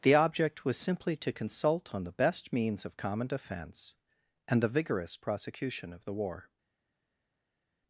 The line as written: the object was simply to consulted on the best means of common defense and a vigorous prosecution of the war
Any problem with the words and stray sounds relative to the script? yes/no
yes